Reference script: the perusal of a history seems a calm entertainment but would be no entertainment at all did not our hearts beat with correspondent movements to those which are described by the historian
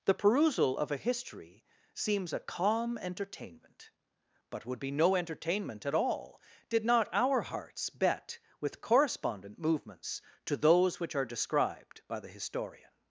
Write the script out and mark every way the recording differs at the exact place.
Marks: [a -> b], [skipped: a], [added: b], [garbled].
the perusal of a history seems a calm entertainment but would be no entertainment at all did not our hearts [beat -> bet] with correspondent movements to those which are described by the historian